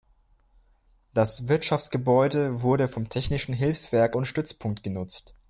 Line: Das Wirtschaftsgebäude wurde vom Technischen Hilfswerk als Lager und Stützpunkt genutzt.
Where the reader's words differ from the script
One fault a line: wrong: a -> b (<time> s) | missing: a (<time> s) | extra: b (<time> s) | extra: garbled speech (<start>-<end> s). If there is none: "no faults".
missing: als Lager (4.2 s)